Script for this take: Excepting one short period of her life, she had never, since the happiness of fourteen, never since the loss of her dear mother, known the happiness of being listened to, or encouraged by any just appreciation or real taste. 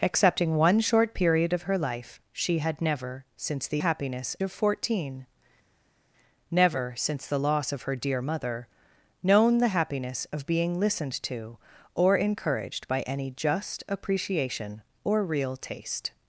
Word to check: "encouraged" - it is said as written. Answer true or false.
true